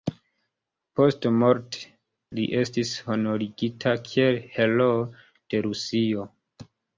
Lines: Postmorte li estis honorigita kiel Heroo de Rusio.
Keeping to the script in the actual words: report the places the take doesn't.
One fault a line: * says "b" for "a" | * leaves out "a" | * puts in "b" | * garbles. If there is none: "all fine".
all fine